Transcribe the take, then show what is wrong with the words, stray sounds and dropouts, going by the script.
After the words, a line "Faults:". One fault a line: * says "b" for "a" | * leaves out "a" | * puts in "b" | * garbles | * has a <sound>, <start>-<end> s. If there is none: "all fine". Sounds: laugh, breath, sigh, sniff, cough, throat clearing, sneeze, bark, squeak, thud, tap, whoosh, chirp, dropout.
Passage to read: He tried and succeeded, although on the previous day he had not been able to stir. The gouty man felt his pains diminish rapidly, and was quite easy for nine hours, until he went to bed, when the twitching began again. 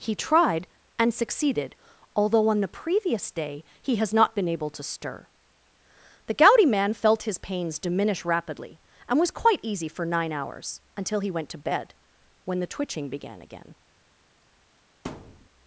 He tried and succeeded, although on the previous day he has not been able to stir. The gouty man felt his pains diminish rapidly, and was quite easy for nine hours, until he went to bed, when the twitching began again.
Faults:
* says "has" for "had"
* has a thud, 15.1-15.5 s